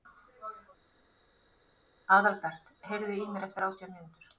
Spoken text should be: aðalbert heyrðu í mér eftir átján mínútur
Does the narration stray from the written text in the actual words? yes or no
no